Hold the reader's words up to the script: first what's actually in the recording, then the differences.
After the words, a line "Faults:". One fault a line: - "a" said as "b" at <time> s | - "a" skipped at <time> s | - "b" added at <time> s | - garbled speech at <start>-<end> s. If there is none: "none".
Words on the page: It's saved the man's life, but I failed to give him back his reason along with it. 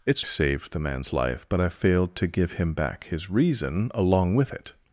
It's saved the man's life, but I failed to give him back his reason along with it.
Faults:
none